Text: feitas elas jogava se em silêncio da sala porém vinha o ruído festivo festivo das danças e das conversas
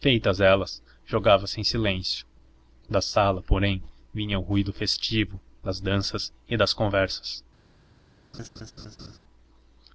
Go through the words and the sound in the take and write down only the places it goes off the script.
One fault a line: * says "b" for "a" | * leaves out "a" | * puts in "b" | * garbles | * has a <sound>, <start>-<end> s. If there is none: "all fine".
* leaves out "festivo"
* has a laugh, 8.3-9.2 s